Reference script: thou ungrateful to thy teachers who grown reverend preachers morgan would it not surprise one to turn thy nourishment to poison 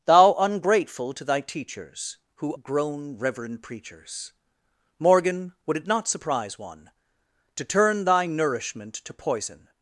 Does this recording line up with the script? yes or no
yes